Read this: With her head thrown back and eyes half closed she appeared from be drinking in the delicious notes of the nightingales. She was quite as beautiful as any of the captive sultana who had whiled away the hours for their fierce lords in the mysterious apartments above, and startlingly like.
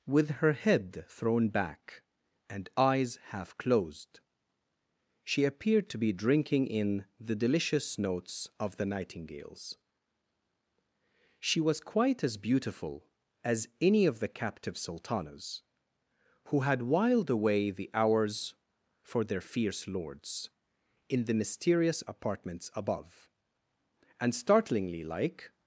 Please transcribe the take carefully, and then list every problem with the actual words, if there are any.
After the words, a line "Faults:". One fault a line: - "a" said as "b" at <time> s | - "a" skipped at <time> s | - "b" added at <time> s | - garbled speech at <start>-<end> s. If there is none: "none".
With her head thrown back and eyes half closed she appeared to be drinking in the delicious notes of the nightingales. She was quite as beautiful as any of the captive sultanas who had whiled away the hours for their fierce lords in the mysterious apartments above, and startlingly like.
Faults:
- "from" said as "to" at 5.9 s
- "sultana" said as "sultanas" at 14.8 s